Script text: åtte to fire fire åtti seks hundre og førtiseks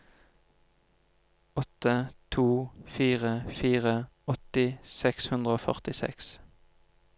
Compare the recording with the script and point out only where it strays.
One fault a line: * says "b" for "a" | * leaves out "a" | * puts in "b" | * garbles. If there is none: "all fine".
all fine